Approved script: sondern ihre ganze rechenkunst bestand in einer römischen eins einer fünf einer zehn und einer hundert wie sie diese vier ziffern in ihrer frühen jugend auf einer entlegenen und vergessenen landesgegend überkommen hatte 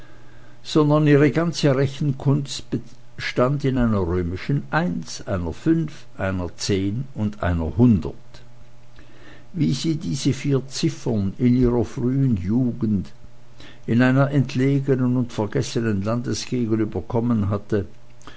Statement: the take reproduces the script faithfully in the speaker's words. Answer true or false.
false